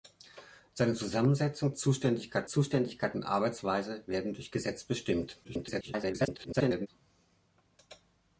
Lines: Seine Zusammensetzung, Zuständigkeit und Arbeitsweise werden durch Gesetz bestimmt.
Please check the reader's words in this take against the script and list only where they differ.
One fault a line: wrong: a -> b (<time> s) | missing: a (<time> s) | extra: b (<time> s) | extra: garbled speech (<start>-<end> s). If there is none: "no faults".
extra: Zuständigkeit (2.5 s)
extra: garbled speech (5.4-6.9 s)